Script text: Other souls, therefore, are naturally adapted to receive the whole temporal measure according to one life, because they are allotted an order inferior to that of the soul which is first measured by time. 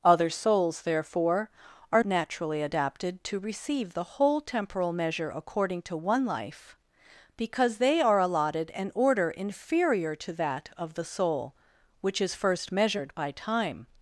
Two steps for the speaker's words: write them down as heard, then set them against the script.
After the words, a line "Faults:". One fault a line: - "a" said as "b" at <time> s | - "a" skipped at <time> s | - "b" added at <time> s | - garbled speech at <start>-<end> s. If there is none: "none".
Other souls, therefore, are naturally adapted to receive the whole temporal measure according to one life, because they are allotted an order inferior to that of the soul which is first measured by time.
Faults:
none